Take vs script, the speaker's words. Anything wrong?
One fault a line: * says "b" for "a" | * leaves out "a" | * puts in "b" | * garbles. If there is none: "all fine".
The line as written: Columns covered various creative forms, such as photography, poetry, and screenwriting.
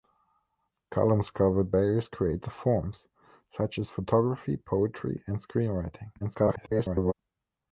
* garbles